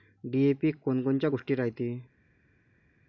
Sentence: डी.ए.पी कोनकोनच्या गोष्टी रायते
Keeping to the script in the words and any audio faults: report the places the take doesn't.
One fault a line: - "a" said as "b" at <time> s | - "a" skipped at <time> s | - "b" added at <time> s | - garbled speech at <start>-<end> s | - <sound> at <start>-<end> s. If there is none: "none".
none